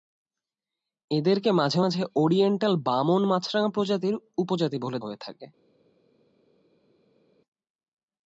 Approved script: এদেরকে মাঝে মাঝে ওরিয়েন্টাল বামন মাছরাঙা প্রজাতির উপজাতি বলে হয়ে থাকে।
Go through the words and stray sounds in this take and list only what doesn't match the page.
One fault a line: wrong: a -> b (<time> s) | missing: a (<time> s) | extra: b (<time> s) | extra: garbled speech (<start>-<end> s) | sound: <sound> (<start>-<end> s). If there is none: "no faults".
no faults